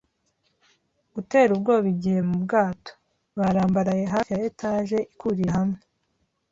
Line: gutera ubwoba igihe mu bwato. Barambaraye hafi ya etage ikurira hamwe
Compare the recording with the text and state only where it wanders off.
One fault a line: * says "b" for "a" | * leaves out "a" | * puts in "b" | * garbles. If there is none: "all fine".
all fine